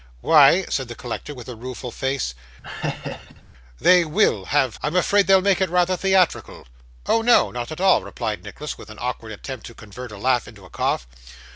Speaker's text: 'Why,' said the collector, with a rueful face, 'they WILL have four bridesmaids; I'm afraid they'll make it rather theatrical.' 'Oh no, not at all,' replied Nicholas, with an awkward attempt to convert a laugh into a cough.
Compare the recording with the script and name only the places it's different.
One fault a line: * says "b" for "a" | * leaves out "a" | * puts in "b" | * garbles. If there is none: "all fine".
* leaves out "four bridesmaids"